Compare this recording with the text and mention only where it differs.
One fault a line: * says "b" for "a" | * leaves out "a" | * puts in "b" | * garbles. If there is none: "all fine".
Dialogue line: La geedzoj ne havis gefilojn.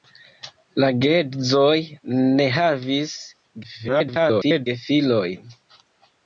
* garbles